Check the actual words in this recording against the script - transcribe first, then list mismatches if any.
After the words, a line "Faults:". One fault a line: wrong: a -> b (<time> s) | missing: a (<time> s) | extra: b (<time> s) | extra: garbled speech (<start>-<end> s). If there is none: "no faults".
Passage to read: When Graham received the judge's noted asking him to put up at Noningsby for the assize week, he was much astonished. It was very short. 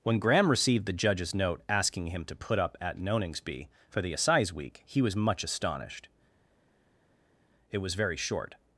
When Graham received the judge's note asking him to put up at Noningsby for the assize week, he was much astonished. It was very short.
Faults:
wrong: noted -> note (1.4 s)